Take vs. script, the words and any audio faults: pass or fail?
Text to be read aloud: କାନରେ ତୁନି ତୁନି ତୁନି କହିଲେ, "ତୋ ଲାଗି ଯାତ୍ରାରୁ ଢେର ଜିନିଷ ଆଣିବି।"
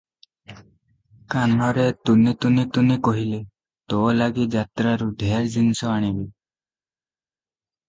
pass